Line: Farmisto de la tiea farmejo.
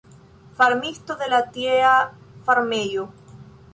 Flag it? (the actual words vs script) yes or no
no